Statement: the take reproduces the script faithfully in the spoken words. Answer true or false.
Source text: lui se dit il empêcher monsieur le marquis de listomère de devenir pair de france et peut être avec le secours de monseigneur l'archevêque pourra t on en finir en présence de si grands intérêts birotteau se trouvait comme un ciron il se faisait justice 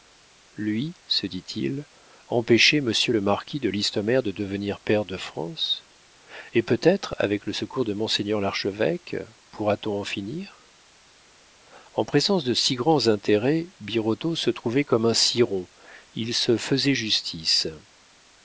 true